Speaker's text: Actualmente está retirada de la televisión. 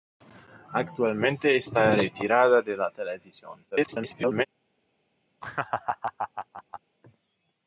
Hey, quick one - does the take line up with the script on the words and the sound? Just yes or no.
no